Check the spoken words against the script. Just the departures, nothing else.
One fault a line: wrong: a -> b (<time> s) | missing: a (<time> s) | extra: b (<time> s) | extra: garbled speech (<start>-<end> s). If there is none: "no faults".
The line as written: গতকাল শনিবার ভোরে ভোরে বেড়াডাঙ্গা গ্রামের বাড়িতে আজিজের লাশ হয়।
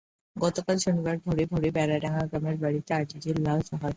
no faults